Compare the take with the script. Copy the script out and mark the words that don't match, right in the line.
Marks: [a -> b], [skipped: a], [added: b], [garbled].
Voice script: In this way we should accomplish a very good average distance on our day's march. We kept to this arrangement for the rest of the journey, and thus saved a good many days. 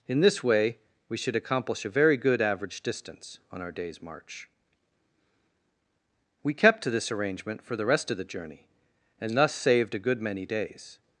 In this way we should accomplish a very good average distance on our day's march. We kept to this arrangement for the rest of the journey, and thus saved a good many days.